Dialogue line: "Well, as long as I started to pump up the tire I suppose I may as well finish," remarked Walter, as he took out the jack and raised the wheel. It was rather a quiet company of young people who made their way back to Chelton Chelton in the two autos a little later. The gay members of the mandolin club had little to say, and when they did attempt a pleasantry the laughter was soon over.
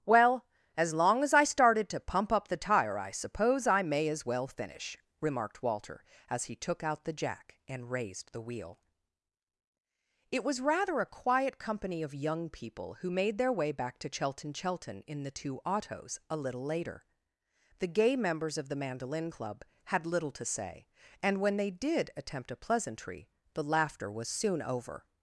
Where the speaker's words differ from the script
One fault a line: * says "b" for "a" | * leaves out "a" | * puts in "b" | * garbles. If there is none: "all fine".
all fine